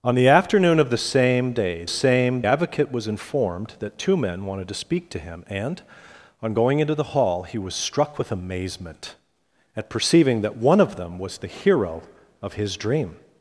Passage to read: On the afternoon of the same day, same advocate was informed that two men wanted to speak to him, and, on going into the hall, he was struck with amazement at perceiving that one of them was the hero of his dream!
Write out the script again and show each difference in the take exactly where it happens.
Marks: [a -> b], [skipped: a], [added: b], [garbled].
On the afternoon of the same day, same advocate was informed that two men wanted to speak to him, and, on going into the hall, he was struck with amazement at perceiving that one of them was the hero of his dream!